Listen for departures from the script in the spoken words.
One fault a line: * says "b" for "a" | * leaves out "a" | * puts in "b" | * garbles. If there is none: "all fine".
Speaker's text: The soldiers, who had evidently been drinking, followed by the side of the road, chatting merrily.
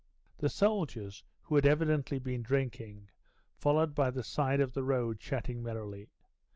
all fine